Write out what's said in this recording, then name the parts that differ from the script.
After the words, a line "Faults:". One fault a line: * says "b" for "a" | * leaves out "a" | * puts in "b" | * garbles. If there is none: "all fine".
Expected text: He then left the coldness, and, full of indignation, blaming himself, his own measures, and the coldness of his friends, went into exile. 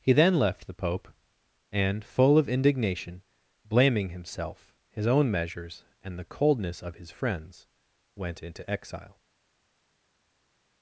He then left the pope, and, full of indignation, blaming himself, his own measures, and the coldness of his friends, went into exile.
Faults:
* says "pope" for "coldness"